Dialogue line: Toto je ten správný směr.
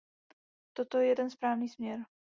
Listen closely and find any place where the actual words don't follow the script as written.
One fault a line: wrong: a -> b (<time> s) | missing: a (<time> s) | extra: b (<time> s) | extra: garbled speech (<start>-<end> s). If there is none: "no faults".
no faults